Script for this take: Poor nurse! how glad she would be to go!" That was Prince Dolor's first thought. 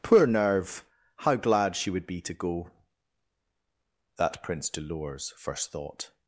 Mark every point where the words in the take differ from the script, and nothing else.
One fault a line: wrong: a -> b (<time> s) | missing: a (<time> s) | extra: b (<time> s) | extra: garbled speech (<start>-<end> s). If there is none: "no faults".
wrong: nurse -> nerve (0.2 s)
missing: was (4.4 s)